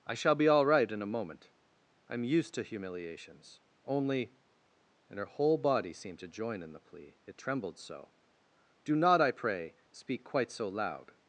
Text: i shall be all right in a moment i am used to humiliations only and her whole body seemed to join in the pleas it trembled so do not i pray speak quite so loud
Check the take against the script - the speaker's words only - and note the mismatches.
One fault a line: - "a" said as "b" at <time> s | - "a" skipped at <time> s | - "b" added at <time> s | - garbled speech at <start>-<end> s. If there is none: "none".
- "pleas" said as "plea" at 6.8 s